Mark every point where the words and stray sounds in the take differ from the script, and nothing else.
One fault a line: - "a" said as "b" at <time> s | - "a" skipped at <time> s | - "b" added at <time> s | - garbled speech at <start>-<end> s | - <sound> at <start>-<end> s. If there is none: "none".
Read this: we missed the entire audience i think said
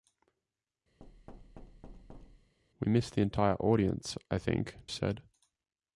- thud at 1.0-2.5 s